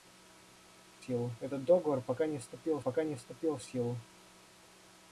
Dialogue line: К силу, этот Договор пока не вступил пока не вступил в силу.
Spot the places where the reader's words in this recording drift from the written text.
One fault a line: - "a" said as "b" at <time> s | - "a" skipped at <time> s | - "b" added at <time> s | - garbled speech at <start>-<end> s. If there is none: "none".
none